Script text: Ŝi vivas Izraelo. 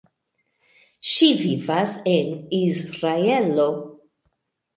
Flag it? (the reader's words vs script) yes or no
yes